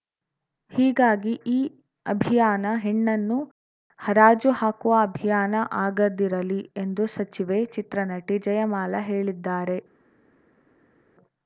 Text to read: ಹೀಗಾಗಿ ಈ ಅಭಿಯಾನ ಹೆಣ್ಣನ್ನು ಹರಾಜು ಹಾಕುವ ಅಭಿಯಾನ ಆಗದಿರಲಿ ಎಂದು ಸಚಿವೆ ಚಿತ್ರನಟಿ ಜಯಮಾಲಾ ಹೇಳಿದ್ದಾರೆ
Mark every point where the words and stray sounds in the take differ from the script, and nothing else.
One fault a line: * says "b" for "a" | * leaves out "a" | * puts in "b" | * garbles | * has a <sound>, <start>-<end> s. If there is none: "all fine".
all fine